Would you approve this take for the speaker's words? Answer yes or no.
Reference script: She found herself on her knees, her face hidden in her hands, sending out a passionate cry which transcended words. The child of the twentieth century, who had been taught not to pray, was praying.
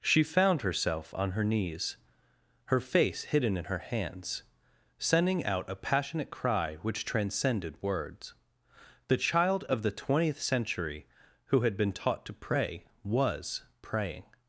no